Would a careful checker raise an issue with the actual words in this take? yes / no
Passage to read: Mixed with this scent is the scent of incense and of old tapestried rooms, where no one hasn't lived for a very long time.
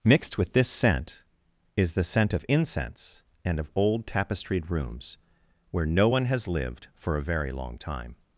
yes